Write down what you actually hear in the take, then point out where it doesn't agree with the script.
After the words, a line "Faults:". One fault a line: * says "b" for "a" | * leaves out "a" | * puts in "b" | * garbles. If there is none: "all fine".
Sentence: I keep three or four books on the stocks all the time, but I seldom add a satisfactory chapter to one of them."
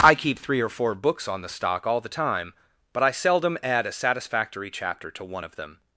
I keep three or four books on the stock all the time, but I seldom add a satisfactory chapter to one of them."
Faults:
* says "stock" for "stocks"